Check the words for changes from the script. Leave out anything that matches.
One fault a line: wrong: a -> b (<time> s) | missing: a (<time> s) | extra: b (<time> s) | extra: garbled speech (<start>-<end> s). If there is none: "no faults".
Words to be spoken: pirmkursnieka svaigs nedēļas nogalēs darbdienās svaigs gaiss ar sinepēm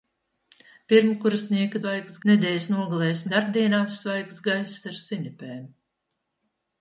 no faults